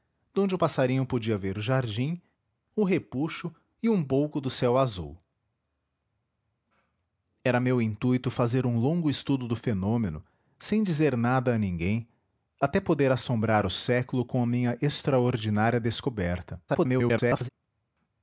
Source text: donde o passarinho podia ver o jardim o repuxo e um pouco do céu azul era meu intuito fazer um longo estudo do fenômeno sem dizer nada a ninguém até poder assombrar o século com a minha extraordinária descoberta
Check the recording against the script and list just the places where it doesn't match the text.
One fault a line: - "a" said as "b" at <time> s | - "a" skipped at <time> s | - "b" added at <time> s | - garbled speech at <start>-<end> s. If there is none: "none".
- garbled speech at 16.7-17.5 s